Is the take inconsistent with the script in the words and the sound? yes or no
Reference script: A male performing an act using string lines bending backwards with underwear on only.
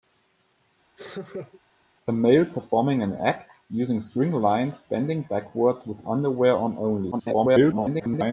yes